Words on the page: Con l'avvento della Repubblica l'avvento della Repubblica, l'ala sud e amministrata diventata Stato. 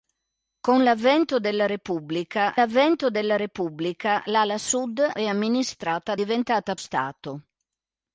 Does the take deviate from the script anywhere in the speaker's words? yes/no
no